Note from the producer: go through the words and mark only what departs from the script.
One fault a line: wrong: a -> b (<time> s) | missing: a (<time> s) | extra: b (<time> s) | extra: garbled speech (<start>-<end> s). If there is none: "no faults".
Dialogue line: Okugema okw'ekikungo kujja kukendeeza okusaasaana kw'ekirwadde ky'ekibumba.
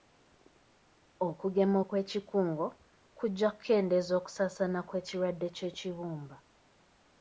no faults